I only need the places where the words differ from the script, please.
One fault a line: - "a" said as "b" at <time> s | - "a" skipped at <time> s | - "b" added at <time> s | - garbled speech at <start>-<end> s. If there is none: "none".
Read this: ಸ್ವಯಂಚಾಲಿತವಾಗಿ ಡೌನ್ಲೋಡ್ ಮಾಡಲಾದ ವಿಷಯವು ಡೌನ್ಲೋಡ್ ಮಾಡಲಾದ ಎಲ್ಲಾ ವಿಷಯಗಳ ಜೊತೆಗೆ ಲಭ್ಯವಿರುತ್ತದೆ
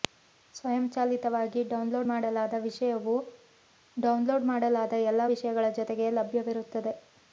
none